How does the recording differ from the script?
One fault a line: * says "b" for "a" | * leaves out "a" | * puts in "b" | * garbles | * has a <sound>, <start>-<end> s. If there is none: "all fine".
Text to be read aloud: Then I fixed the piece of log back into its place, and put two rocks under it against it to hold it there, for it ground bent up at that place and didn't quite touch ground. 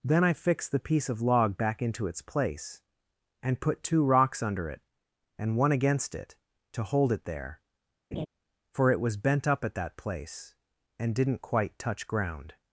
* puts in "and one"
* has a laugh, 8.1-8.3 s
* says "was" for "ground"